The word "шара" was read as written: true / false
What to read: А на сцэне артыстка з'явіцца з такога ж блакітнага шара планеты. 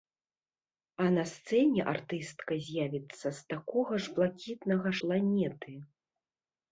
false